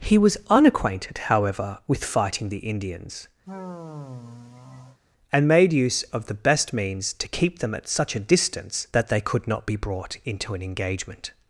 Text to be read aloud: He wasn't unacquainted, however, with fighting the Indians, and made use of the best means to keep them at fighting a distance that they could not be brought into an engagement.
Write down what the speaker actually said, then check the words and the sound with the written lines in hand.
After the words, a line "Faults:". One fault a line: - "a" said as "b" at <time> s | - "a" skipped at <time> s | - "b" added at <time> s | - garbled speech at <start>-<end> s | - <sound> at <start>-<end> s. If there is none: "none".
He was unacquainted, however, with fighting the Indians, and made use of the best means to keep them at such a distance that they could not be brought into an engagement.
Faults:
- "wasn't" said as "was" at 0.2 s
- sigh at 3.4-5.0 s
- "fighting" said as "such" at 7.9 s